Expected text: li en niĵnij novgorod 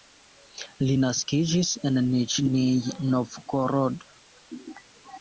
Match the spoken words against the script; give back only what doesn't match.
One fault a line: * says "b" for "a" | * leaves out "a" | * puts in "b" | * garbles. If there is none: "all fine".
* puts in "naskiĝis"